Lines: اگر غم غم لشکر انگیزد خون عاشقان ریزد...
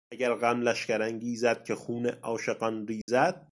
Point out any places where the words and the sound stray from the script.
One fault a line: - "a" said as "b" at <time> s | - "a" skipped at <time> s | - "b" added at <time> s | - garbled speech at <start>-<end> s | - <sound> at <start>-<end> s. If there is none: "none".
- "غم" skipped at 0.6 s
- "که" added at 1.6 s
- dropout at 3.0-3.1 s